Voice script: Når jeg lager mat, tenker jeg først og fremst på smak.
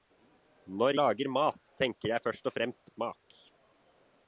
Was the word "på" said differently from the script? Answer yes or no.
yes